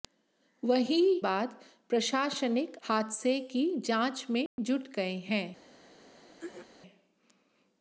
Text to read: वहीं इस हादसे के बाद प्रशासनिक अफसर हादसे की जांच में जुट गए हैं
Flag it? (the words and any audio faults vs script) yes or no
yes